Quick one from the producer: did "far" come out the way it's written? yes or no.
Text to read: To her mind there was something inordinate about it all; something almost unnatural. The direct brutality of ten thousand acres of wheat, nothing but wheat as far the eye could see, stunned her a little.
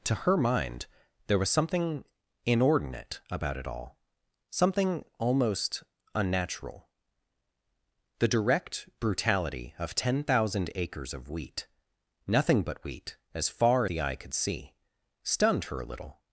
yes